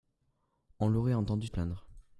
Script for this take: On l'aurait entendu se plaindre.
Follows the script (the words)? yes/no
no